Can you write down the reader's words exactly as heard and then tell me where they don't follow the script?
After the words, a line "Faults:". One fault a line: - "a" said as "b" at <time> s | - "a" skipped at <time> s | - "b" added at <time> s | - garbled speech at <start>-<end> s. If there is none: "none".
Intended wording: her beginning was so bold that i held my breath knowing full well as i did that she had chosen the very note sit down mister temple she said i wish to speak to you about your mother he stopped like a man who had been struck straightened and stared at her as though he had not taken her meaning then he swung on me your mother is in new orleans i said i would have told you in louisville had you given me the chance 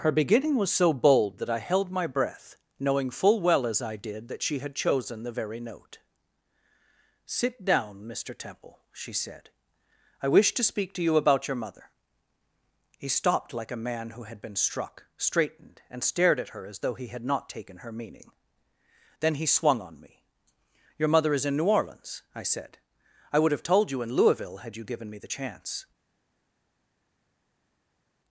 her beginning was so bold that i held my breath knowing full well as i did that she had chosen the very note sit down mister temple she said i wish to speak to you about your mother he stopped like a man who had been struck straightened and stared at her as though he had not taken her meaning then he swung on me your mother is in new orleans i said i would have told you in louisville had you given me the chance
Faults:
none